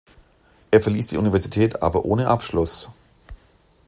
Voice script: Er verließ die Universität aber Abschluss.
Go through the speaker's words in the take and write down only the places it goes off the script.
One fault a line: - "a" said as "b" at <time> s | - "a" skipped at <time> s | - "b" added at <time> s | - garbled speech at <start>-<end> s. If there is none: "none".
- "ohne" added at 2.1 s